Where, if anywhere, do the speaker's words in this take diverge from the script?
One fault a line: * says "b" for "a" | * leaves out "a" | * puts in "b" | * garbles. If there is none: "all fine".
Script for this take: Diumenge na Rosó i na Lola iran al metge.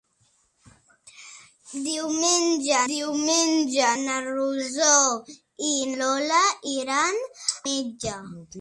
* puts in "diumenge"
* leaves out "na"
* leaves out "al"